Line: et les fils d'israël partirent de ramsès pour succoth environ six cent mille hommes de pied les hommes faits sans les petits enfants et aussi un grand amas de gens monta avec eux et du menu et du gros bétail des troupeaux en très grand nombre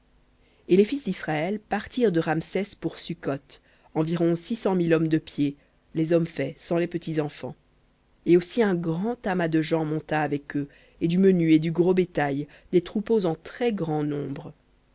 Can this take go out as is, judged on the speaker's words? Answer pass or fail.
pass